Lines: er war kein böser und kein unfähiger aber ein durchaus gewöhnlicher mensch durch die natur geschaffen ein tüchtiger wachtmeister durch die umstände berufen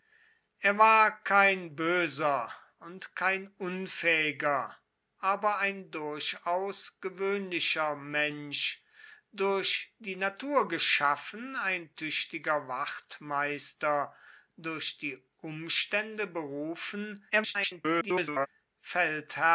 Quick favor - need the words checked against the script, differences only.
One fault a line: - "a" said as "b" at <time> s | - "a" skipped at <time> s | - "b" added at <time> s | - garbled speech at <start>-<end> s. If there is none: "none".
- garbled speech at 17.3-18.5 s